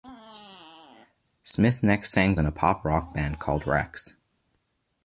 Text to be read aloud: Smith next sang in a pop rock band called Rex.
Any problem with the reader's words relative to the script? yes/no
no